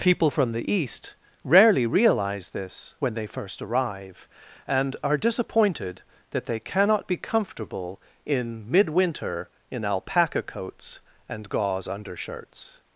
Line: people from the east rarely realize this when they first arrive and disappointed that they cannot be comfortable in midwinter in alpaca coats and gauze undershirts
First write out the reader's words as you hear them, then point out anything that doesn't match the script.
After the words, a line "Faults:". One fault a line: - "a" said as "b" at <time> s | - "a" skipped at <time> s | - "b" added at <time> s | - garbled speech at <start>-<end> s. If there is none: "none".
people from the east rarely realize this when they first arrive and are disappointed that they cannot be comfortable in midwinter in alpaca coats and gauze undershirts
Faults:
- "are" added at 5.0 s